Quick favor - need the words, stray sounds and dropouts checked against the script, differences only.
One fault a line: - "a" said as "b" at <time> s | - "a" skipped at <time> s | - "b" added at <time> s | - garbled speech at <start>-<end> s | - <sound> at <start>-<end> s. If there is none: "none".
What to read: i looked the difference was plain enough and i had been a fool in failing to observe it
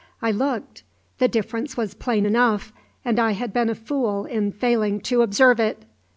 none